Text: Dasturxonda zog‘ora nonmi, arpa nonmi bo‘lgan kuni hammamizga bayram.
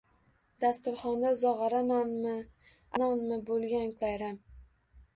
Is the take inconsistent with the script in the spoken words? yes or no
yes